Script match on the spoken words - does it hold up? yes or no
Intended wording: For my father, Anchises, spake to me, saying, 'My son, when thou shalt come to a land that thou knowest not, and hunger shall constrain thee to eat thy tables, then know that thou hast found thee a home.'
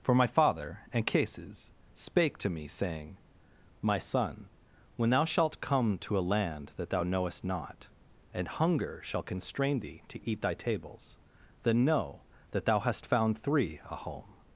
no